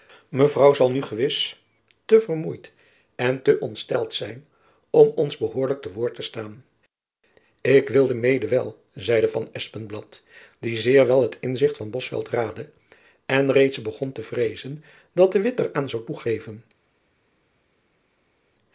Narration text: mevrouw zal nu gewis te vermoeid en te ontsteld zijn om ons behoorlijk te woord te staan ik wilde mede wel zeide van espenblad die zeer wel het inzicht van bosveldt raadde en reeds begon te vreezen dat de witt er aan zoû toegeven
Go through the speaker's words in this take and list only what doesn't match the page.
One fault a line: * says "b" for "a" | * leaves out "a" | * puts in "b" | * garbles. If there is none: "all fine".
all fine